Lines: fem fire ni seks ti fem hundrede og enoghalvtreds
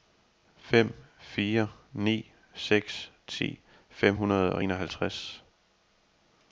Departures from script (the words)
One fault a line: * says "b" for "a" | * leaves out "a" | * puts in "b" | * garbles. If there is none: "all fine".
all fine